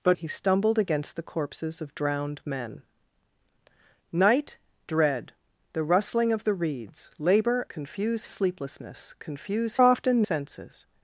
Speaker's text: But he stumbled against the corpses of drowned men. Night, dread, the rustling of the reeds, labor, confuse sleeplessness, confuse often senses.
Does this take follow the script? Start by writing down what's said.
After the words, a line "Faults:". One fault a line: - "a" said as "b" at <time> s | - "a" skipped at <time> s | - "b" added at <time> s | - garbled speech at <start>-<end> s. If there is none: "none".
But he stumbled against the corpses of drowned men. Night, dread, the rustling of the reeds, labor, confuse sleeplessness, confuse often senses.
Faults:
none